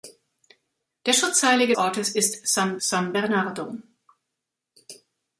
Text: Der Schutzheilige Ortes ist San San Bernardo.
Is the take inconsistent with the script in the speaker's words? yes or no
no